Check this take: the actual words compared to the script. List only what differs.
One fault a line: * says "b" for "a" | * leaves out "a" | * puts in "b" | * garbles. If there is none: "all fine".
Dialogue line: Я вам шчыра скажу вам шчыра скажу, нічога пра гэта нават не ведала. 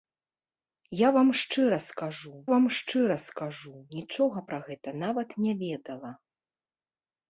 all fine